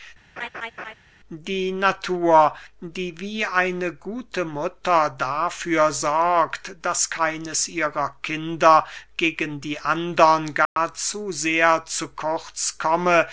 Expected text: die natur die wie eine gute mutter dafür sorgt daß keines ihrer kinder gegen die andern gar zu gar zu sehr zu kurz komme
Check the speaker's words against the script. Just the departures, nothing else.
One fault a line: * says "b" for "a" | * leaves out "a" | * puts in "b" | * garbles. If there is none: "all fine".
* leaves out "gar zu"